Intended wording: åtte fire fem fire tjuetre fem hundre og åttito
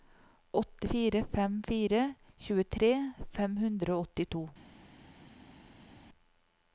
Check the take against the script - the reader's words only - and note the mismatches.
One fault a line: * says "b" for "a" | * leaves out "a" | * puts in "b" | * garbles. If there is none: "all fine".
all fine